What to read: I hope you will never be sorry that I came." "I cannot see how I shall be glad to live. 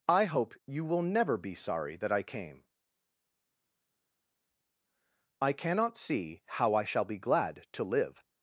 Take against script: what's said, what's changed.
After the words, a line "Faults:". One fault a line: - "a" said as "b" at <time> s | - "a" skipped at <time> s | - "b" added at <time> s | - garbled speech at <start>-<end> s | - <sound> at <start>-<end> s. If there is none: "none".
I hope you will never be sorry that I came." "I cannot see how I shall be glad to live.
Faults:
none